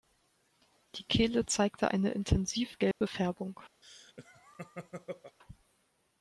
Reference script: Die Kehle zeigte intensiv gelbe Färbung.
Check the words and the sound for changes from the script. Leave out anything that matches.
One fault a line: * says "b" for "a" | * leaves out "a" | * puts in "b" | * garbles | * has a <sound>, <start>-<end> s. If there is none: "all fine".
* puts in "eine"
* has a dropout, 2.9-3.0 s
* has a laugh, 3.8-5.4 s